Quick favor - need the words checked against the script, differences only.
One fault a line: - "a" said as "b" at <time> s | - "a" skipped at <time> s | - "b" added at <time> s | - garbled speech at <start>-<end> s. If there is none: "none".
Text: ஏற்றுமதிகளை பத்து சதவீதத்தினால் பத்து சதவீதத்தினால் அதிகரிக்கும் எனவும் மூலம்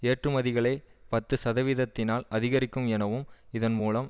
- "பத்து சதவீதத்தினால்" skipped at 2.2 s
- "இதன்" added at 3.5 s